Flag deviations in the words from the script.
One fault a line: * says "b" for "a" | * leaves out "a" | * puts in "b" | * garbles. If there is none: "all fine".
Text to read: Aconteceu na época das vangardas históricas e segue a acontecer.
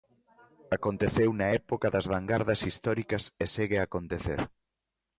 all fine